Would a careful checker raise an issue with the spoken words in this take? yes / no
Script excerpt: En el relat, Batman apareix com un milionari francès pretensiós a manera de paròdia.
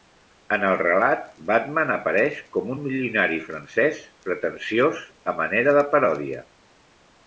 no